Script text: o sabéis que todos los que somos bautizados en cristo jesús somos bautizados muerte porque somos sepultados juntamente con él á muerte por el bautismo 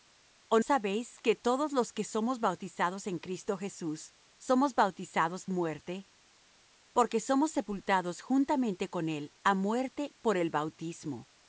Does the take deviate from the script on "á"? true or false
false